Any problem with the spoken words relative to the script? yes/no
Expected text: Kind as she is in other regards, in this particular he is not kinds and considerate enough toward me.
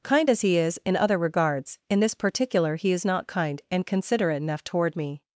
yes